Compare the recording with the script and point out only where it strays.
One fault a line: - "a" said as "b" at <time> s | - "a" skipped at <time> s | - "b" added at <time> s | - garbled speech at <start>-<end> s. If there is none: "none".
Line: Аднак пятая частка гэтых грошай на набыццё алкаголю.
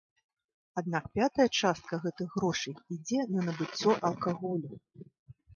- "ідзе" added at 3.0 s